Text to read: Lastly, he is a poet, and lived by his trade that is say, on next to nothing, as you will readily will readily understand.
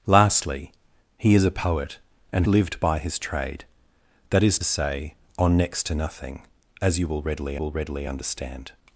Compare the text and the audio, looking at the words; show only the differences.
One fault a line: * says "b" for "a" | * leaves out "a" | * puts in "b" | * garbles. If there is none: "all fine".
all fine